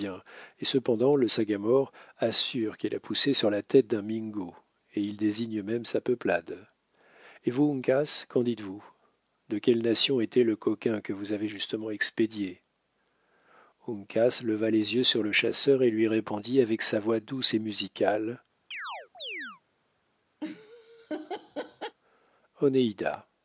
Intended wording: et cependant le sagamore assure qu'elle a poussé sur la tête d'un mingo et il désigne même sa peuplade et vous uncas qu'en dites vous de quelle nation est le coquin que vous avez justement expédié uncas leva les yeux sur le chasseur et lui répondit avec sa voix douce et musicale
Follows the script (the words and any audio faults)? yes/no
no